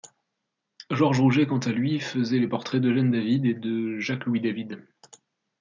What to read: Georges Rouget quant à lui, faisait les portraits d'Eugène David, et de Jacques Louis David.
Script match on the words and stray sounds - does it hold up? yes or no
yes